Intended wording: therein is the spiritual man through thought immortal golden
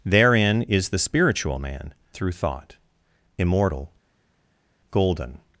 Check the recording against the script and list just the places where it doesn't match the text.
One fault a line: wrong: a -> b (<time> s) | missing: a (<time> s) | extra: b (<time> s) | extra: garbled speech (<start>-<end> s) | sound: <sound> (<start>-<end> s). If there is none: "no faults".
no faults